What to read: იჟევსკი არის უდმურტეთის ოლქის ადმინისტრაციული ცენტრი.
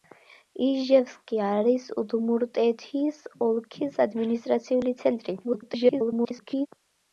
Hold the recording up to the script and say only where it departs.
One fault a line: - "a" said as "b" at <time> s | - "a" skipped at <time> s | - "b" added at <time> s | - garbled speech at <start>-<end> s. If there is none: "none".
- garbled speech at 5.4-6.7 s